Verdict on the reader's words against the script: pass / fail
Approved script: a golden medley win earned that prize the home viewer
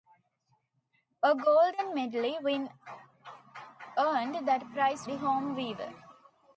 pass